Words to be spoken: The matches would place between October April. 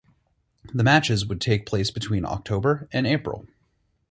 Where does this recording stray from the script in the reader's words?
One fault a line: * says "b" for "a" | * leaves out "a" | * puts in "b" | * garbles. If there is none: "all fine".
* puts in "take"
* puts in "and"